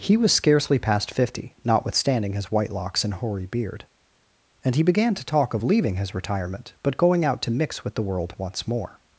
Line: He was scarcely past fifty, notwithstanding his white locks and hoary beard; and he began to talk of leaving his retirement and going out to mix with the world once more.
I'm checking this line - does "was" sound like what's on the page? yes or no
yes